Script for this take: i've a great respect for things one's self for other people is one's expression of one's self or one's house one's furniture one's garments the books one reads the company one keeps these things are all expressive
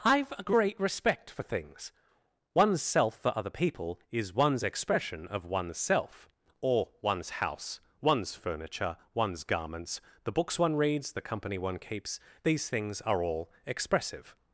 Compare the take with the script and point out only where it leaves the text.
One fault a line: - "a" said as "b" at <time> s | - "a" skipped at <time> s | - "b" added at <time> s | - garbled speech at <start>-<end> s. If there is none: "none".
none